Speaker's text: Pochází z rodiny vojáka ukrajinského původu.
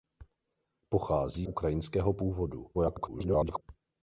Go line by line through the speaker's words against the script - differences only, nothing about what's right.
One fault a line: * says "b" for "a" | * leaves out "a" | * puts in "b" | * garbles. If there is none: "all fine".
* leaves out "z rodiny vojáka"
* garbles